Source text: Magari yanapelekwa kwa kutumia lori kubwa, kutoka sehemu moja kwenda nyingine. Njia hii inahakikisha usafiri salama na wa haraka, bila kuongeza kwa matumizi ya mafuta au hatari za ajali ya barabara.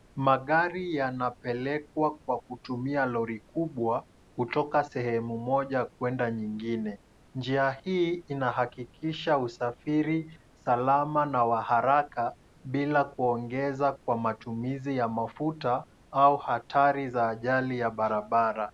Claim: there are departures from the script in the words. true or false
false